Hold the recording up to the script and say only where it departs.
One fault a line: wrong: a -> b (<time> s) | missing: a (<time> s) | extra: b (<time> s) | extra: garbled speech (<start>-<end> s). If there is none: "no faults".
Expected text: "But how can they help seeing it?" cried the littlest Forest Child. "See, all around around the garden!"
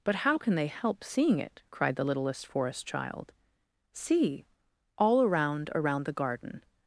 no faults